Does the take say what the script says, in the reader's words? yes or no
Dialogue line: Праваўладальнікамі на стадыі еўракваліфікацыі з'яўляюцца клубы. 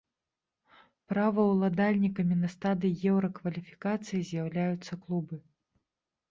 yes